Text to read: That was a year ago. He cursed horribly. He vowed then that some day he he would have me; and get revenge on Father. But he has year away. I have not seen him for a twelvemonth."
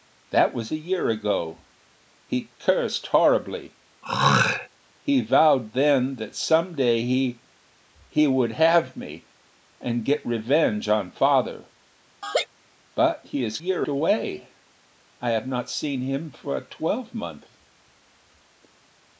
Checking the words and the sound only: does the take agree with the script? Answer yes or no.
no